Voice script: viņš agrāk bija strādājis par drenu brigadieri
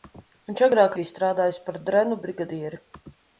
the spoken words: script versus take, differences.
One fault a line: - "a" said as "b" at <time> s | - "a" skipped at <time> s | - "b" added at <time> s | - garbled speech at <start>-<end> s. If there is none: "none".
none